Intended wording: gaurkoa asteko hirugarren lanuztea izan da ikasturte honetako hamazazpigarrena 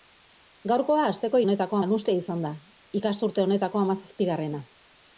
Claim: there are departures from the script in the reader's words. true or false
true